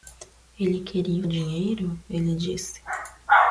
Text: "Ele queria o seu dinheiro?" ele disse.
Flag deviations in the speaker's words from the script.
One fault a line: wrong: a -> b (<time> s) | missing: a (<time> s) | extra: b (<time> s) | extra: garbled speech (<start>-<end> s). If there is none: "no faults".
missing: seu (1.3 s)